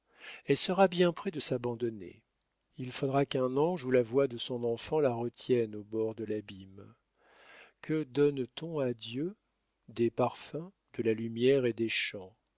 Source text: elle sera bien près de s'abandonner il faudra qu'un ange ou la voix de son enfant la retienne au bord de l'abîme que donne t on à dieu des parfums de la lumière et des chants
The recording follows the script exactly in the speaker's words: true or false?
true